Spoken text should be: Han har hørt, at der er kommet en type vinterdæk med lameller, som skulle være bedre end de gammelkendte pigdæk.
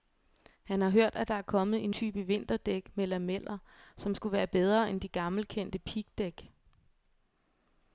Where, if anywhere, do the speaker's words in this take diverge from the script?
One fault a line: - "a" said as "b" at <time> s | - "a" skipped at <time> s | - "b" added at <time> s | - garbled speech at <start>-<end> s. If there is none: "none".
none